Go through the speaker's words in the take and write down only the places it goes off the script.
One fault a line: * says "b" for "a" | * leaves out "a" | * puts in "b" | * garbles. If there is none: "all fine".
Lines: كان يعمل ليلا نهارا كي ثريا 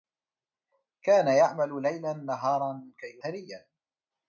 all fine